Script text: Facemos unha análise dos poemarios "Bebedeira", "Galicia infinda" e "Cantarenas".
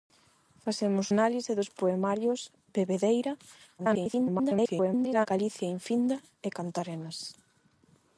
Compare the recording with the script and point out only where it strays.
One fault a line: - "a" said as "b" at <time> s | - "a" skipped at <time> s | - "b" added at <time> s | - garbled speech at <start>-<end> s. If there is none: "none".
- "unha" skipped at 1.1 s
- garbled speech at 3.8-5.3 s